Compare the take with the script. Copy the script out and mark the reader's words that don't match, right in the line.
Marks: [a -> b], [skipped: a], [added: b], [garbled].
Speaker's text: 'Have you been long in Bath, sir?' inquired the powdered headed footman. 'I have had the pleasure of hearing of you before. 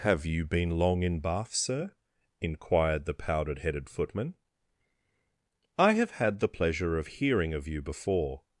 'Have you been long in Bath, sir?' inquired the powdered headed footman. 'I have had the pleasure of hearing of you before.